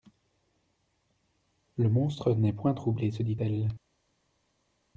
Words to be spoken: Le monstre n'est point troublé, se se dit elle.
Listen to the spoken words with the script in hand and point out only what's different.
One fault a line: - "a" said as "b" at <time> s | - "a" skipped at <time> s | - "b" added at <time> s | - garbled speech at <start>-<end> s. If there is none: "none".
- "se" skipped at 3.2 s